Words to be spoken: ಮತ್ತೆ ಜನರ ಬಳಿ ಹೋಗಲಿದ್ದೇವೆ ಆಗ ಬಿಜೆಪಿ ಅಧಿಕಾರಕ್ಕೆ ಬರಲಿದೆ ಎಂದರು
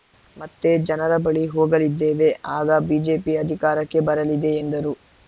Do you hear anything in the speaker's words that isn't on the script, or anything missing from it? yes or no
no